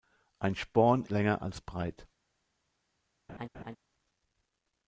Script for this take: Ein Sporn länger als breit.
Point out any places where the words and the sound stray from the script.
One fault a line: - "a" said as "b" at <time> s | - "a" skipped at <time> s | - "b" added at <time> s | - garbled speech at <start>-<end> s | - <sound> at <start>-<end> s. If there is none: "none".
- laugh at 3.3-3.8 s